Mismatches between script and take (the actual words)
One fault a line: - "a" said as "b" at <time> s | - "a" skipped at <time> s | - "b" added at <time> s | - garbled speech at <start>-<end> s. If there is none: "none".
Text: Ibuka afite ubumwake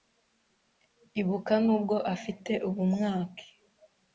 - "nubwo" added at 1.6 s